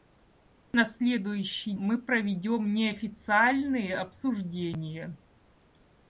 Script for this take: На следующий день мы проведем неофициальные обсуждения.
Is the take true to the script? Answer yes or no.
no